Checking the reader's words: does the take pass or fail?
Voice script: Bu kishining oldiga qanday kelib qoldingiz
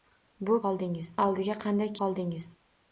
fail